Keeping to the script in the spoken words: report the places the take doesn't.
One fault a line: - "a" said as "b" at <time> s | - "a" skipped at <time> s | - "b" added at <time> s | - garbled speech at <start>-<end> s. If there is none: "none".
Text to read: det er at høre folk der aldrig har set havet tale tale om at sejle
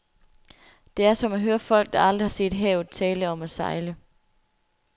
- "som" added at 1.1 s
- "tale" skipped at 3.3 s